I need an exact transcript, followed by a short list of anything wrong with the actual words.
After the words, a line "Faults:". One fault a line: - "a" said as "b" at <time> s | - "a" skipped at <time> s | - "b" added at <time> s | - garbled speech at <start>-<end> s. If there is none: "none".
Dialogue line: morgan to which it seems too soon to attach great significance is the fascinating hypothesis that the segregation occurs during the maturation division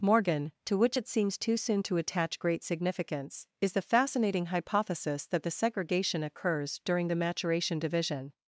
morgan to which it seems too soon to attach great significance is the fascinating hypothesis that the segregation occurs during the maturation division
Faults:
none